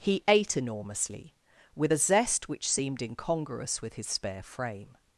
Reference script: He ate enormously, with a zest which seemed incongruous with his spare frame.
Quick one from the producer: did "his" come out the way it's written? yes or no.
yes